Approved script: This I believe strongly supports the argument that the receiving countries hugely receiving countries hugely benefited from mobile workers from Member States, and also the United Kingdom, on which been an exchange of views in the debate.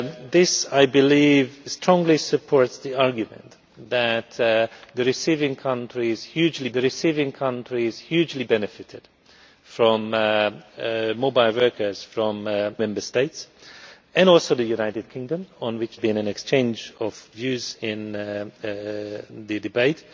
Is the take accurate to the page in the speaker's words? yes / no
yes